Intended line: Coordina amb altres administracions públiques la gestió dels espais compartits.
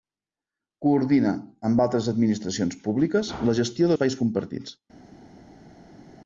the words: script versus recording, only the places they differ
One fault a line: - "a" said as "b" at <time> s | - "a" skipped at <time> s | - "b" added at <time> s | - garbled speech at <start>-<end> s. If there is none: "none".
- "dels" skipped at 3.9 s